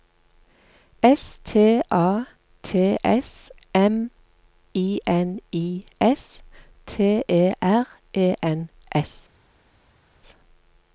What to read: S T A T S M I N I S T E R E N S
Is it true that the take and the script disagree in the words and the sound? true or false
false